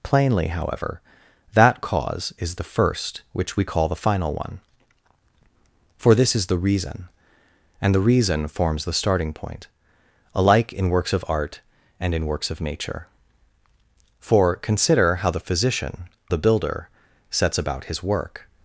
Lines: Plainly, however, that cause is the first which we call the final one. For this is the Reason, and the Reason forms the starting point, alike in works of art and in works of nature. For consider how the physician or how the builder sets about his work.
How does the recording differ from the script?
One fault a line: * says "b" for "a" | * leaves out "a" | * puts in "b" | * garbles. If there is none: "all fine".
* leaves out "or how"